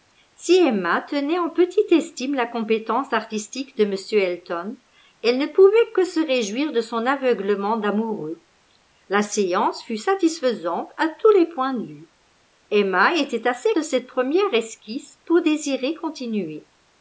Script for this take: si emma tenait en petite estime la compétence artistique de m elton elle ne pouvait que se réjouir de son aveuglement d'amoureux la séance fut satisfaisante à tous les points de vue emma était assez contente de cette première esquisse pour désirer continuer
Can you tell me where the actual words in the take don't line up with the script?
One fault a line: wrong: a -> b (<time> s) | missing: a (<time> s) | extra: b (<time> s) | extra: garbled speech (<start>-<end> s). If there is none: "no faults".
missing: contente (13.7 s)